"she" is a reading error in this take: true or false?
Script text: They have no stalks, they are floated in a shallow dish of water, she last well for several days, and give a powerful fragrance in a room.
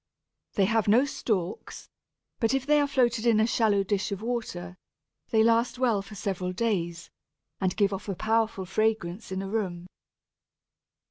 true